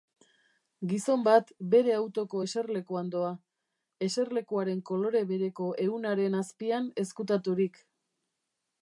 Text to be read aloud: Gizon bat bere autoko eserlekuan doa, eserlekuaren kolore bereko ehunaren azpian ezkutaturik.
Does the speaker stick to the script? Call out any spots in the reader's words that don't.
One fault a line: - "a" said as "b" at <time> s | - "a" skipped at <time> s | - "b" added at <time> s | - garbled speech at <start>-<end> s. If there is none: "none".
none